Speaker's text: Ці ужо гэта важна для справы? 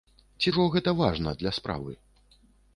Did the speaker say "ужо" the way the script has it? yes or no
yes